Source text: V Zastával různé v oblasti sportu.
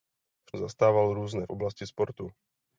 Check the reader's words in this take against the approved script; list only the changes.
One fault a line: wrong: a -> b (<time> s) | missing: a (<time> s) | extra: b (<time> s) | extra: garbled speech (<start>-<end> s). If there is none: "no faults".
no faults